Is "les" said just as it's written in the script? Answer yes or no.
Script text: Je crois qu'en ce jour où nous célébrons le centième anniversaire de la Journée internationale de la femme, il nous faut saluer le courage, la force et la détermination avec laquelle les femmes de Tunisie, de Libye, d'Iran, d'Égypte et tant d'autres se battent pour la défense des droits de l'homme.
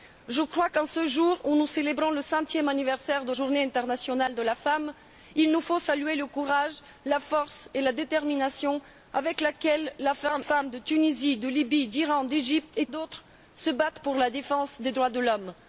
no